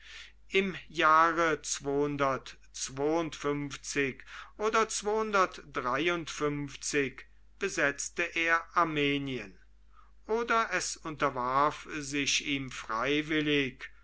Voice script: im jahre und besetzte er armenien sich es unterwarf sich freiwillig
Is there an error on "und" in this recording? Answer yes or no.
yes